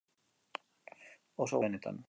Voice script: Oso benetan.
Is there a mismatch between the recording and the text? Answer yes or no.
no